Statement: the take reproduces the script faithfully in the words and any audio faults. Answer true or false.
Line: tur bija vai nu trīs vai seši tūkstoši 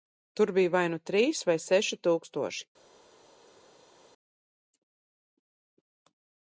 true